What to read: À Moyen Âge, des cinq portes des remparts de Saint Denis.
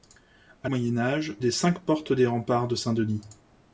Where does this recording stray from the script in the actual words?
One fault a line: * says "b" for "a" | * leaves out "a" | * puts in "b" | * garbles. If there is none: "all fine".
all fine